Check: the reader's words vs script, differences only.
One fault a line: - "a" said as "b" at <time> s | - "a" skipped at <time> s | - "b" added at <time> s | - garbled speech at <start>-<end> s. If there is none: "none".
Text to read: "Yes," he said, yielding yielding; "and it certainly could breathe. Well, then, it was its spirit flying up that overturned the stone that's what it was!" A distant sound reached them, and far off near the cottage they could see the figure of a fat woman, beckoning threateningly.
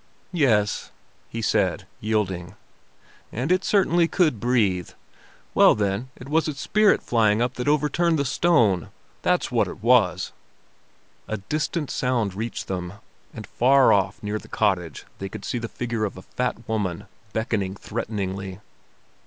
- "yielding" skipped at 2.5 s